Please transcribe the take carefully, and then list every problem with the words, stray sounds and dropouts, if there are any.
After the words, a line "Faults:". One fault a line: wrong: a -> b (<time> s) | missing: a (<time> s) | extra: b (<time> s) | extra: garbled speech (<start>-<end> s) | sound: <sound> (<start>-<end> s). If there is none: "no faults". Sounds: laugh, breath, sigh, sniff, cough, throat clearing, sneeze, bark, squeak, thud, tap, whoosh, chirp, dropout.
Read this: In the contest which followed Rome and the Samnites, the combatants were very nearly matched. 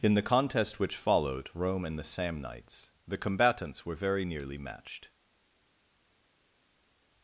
In the contest which followed Rome and the Samnites, the combatants were very nearly matched.
Faults:
no faults